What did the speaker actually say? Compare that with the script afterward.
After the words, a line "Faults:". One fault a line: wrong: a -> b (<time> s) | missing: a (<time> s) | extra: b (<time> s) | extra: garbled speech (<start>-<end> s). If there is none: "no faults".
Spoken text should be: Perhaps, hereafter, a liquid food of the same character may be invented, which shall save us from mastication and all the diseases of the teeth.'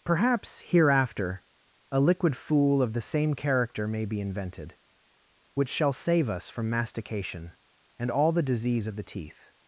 Perhaps, hereafter, a liquid fool of the same character may be invented, which shall save us from mastication and all the disease of the teeth.'
Faults:
wrong: food -> fool (2.4 s)
wrong: diseases -> disease (8.4 s)